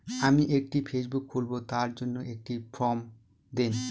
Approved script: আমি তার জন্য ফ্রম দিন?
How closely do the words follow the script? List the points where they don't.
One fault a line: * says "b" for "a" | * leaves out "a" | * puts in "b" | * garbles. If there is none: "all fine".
* puts in "একটি ফেসবুক খুলব"
* puts in "একটি"